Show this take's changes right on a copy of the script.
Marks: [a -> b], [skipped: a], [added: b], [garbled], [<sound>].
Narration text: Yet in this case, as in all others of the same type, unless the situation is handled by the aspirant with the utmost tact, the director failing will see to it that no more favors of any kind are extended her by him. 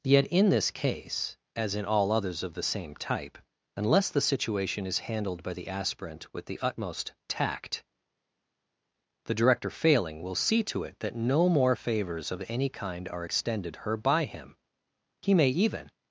Yet in this case, as in all others of the same type, unless the situation is handled by the aspirant with the utmost tact, the director failing will see to it that no more favors of any kind are extended her by him. [added: He may even]